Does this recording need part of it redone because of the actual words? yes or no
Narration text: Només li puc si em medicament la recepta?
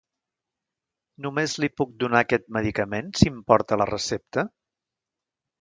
yes